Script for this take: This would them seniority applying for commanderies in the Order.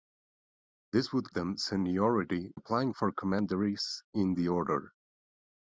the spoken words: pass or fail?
pass